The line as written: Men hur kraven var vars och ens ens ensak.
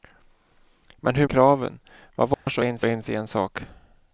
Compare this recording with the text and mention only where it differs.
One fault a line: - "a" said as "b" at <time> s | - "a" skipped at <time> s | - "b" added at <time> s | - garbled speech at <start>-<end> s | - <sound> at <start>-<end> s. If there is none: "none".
- dropout at 2.3-2.5 s